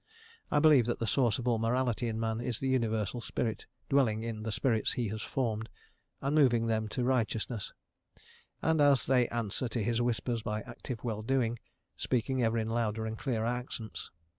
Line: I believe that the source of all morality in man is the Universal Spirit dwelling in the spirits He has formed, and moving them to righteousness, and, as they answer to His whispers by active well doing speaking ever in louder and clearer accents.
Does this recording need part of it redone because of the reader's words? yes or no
no